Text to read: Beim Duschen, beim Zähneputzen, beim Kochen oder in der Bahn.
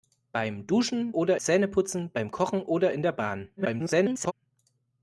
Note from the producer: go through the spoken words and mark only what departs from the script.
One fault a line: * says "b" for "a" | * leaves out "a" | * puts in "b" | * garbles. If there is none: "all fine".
* says "oder" for "beim"
* garbles